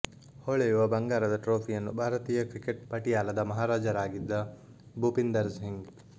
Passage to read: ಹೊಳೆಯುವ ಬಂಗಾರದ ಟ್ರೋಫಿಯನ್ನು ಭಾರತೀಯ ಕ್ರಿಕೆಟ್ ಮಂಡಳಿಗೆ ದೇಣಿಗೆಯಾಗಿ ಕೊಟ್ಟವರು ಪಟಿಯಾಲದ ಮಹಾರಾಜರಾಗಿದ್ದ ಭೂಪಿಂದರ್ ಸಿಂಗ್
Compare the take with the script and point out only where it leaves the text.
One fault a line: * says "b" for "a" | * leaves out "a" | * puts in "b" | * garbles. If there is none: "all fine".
* leaves out "ಮಂಡಳಿಗೆ ದೇಣಿಗೆಯಾಗಿ ಕೊಟ್ಟವರು"